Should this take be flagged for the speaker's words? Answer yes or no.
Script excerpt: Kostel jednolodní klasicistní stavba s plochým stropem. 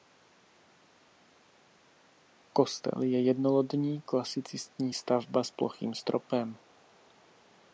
yes